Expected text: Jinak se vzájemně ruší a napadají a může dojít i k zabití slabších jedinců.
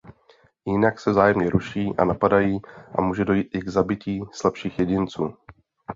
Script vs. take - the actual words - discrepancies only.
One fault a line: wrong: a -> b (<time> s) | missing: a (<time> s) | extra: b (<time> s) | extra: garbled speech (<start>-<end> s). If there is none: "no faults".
no faults